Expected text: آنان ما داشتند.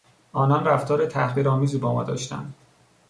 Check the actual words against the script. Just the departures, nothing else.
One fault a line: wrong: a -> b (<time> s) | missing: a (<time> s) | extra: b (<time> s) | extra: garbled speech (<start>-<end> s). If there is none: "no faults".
extra: رفتار تحقیرآمیزی با (0.7 s)